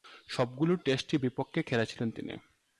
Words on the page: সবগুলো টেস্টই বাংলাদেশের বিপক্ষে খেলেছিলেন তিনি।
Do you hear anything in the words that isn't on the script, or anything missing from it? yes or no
yes